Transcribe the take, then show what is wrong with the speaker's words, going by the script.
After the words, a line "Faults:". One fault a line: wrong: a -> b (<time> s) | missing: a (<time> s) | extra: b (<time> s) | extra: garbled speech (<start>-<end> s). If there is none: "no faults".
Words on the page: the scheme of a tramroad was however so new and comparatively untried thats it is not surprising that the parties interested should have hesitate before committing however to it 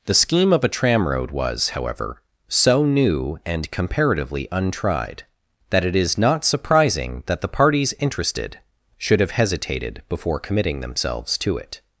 the scheme of a tramroad was however so new and comparatively untried that it is not surprising that the parties interested should have hesitated before committing themselves to it
Faults:
wrong: thats -> that (5.7 s)
wrong: hesitate -> hesitated (9.3 s)
wrong: however -> themselves (10.8 s)